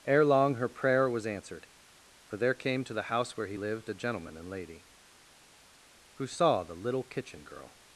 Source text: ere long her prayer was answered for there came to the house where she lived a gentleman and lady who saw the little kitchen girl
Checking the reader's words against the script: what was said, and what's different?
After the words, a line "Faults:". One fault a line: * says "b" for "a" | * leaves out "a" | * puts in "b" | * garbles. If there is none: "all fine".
ere long her prayer was answered for there came to the house where he lived a gentleman and lady who saw the little kitchen girl
Faults:
* says "he" for "she"